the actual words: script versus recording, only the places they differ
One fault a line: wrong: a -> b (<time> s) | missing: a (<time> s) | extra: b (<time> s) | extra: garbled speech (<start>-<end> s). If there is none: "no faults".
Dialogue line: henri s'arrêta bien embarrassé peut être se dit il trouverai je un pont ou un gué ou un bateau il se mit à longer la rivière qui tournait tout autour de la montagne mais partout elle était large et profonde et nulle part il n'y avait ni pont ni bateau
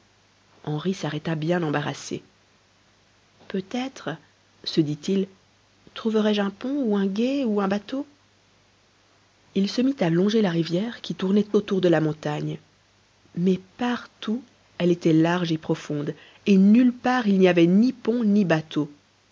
missing: tout (11.4 s)